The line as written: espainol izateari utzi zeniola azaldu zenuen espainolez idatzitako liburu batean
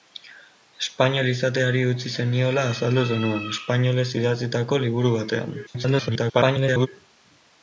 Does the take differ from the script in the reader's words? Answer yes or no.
yes